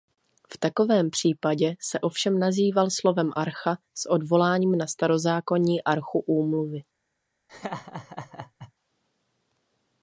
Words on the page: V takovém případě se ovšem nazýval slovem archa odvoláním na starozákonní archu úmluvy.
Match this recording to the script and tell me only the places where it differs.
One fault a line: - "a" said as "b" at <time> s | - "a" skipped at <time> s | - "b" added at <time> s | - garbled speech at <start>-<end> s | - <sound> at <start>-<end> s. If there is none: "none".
- "s" added at 3.9 s
- laugh at 7.5-8.7 s